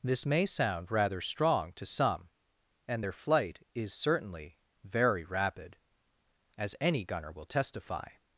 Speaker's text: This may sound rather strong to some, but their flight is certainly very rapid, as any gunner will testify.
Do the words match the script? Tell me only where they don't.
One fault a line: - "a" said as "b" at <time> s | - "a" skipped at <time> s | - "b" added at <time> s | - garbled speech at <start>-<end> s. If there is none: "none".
- "but" said as "and" at 2.9 s